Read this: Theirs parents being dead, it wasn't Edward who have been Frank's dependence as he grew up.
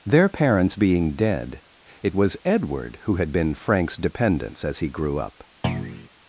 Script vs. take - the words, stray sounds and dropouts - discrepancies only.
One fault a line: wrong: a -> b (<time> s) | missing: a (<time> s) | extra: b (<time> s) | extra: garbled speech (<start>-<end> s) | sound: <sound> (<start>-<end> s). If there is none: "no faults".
wrong: Theirs -> Their (0.0 s)
wrong: wasn't -> was (2.1 s)
wrong: have -> had (3.1 s)
sound: thud (5.6-6.1 s)